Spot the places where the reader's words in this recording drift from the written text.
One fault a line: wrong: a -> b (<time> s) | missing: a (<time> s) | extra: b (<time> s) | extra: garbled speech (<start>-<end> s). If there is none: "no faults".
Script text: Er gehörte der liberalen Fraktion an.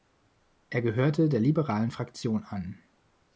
no faults